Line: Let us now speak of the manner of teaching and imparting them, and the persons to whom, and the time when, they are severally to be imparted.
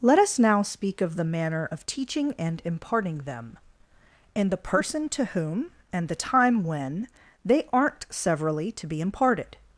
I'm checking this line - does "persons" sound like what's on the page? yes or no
no